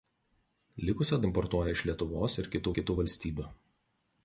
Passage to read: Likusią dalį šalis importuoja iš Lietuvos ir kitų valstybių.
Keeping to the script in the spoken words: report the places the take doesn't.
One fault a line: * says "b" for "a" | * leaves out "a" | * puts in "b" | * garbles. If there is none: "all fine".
* leaves out "dalį šalis"
* puts in "kitų"